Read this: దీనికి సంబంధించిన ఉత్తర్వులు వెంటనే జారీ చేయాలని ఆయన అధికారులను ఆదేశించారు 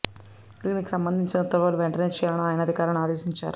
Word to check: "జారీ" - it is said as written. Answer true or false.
false